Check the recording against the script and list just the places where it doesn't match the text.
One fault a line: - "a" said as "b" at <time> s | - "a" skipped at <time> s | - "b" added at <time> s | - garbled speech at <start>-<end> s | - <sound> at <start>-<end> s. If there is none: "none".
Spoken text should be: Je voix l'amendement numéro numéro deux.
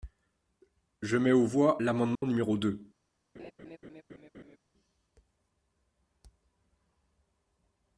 - "mets aux" added at 1.1 s
- dropout at 2.2-2.2 s
- "numéro" skipped at 2.6 s
- laugh at 3.3-4.6 s